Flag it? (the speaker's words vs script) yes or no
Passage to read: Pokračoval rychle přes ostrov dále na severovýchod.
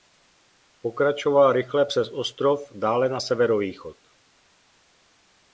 no